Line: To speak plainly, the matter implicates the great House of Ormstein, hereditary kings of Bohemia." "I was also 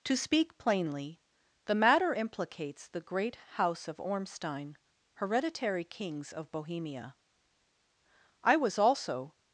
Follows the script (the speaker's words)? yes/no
yes